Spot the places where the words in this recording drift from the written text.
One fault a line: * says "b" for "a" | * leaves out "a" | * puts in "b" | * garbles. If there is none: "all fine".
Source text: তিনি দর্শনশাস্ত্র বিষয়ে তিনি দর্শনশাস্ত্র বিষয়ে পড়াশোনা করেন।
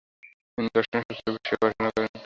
* leaves out "তিনি দর্শনশাস্ত্র বিষয়ে"